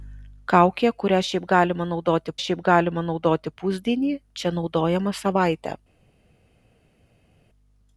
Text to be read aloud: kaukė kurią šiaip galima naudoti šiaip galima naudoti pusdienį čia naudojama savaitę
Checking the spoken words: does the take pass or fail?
pass